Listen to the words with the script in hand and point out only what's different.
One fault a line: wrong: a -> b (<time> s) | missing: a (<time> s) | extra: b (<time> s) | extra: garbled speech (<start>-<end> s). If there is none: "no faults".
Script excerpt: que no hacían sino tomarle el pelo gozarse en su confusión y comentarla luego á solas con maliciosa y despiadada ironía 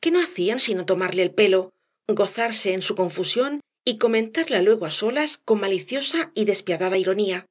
no faults